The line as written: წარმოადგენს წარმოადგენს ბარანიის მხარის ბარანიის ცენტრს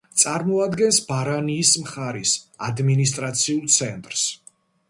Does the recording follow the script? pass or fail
fail